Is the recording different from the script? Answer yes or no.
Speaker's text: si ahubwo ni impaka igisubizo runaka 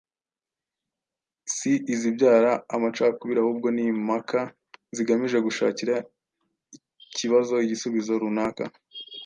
yes